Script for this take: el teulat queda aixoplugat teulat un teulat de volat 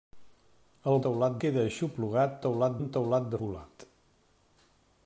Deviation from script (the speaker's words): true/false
false